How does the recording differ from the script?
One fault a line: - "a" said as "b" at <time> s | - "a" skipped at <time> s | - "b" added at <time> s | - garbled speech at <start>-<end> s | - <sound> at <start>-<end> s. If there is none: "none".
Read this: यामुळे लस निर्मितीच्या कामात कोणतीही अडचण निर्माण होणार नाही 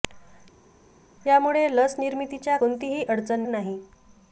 - "कामात" skipped at 2.6 s
- "निर्माण होणार" skipped at 3.4 s